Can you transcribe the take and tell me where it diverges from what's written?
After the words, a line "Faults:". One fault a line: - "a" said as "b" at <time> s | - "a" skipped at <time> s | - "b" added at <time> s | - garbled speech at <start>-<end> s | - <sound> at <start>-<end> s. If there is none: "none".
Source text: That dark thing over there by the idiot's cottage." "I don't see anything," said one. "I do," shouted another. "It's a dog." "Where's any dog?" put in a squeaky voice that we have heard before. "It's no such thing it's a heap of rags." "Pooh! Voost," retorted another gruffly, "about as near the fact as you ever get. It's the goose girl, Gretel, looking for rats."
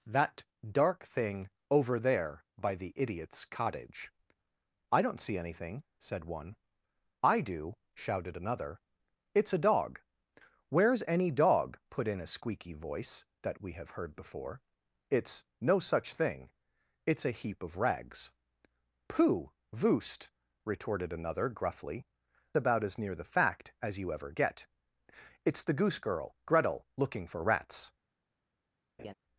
That dark thing over there by the idiot's cottage." "I don't see anything," said one. "I do," shouted another. "It's a dog." "Where's any dog?" put in a squeaky voice that we have heard before. "It's no such thing it's a heap of rags." "Pooh! Voost," retorted another gruffly, "about as near the fact as you ever get. It's the goose girl, Gretel, looking for rats."
Faults:
- laugh at 29.0-29.1 s